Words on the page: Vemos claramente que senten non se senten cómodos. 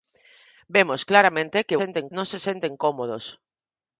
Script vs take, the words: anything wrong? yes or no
no